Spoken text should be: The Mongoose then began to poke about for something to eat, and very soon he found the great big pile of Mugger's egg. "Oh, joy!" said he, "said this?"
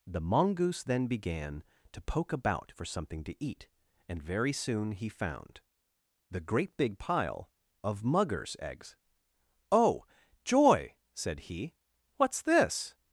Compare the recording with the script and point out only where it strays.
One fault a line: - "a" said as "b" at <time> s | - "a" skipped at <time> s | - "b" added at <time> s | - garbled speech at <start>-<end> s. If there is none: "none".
- "egg" said as "eggs" at 8.6 s
- "said" said as "what's" at 12.2 s